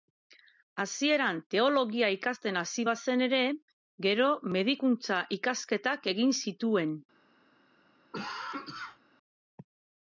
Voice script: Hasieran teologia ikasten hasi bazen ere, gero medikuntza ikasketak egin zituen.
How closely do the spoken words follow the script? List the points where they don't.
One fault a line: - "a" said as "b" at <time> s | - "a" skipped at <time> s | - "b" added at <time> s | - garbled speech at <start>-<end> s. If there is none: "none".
none